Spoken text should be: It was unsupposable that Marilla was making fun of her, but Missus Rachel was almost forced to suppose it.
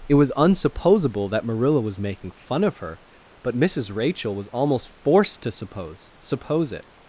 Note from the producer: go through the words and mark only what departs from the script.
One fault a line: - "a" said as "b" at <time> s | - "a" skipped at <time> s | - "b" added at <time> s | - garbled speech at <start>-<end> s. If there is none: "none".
- "suppose" added at 6.2 s